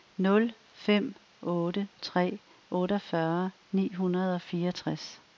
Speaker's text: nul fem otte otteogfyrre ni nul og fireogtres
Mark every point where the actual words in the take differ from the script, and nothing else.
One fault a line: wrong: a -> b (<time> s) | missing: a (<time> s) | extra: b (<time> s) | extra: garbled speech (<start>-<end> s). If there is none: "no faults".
extra: tre (2.0 s)
wrong: nul -> hundrede (3.9 s)